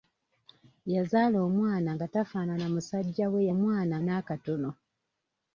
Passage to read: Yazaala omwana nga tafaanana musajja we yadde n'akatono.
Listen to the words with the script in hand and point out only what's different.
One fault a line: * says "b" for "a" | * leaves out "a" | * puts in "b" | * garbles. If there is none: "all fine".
* says "omwana" for "yadde"